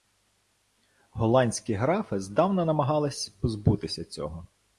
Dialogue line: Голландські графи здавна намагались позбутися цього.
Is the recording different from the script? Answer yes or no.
no